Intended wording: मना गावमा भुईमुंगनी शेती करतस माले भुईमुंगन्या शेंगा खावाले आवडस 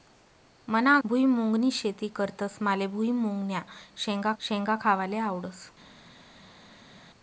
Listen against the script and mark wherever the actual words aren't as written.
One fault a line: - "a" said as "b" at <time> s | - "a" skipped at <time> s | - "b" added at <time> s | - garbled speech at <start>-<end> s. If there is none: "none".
- "गावमा" skipped at 1.0 s
- "शेंगा" added at 4.4 s